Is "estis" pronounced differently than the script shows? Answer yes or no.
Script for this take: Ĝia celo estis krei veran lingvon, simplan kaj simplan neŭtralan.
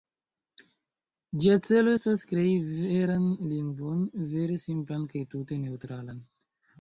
yes